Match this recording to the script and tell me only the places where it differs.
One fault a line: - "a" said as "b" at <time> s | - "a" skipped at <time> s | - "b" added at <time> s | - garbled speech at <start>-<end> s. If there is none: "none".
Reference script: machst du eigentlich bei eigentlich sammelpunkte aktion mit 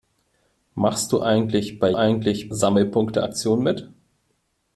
none